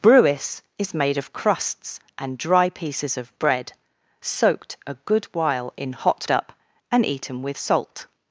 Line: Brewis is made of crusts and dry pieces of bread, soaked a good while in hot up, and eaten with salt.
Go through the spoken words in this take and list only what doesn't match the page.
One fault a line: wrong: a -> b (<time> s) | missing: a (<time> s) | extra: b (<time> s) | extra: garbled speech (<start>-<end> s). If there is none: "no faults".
no faults